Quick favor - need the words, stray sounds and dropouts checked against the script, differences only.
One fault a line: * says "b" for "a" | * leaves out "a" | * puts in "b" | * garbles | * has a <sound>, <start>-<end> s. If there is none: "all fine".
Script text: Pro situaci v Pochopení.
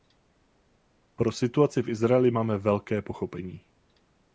* puts in "Izraeli máme velké"